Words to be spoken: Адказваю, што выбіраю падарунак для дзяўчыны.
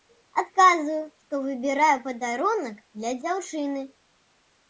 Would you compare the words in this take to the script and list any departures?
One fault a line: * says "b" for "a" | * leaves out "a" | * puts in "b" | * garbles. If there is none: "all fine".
all fine